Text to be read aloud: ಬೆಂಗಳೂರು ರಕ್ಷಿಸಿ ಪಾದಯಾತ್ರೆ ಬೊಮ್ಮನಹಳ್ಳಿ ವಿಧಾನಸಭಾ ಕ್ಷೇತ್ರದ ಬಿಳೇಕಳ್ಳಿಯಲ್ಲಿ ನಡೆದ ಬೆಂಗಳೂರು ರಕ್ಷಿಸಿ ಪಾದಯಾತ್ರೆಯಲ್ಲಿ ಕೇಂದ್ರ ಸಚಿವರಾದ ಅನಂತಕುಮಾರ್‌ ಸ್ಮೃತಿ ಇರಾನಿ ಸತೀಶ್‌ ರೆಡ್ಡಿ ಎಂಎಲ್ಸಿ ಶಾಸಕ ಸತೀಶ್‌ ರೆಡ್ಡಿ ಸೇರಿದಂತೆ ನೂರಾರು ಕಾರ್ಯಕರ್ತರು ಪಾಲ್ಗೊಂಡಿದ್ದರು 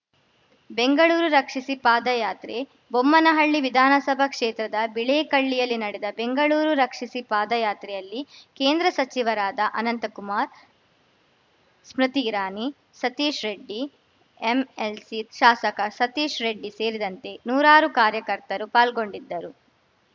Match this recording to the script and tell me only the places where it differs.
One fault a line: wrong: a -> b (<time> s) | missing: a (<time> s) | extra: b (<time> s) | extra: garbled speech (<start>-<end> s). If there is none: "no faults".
no faults